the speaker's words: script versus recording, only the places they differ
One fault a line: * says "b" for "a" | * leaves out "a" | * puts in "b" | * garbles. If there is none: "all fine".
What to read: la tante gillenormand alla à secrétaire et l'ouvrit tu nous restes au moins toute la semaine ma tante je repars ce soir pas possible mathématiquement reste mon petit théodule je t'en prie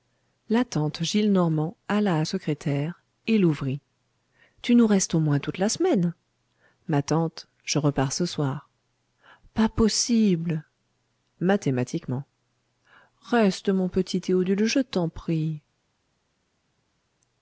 all fine